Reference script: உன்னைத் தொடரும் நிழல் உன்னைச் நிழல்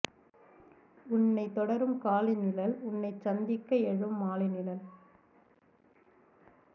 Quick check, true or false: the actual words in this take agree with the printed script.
false